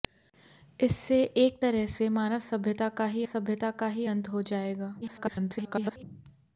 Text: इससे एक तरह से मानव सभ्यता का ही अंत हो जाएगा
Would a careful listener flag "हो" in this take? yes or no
no